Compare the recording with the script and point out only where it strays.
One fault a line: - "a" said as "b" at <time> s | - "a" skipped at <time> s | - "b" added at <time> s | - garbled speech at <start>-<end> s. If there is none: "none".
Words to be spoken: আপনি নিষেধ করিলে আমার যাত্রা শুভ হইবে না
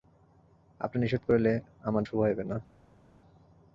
- "যাত্রা" skipped at 2.0 s